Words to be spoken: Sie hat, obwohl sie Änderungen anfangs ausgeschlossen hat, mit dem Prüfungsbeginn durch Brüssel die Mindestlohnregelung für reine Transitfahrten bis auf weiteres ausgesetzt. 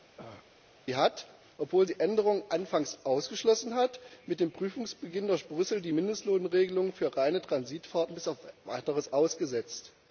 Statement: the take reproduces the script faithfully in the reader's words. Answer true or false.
true